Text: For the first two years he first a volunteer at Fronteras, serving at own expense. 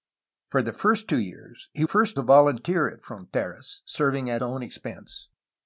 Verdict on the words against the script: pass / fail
pass